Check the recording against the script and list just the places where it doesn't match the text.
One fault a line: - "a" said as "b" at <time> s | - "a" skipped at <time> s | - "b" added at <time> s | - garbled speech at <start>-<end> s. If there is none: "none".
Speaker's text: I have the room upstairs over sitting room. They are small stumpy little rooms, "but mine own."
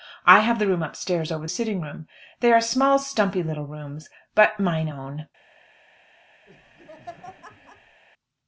none